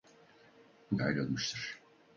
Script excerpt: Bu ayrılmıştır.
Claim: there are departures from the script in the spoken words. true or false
false